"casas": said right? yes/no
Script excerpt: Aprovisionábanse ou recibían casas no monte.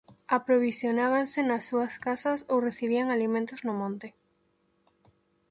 no